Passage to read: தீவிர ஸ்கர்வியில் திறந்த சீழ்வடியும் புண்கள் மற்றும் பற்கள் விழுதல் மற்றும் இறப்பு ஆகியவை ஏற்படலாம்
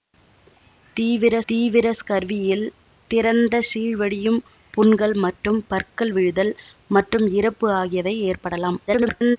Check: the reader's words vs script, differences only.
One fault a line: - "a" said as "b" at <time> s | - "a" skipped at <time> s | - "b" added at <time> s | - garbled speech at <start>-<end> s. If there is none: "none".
- "தீவிர" added at 1.5 s
- garbled speech at 8.9-9.4 s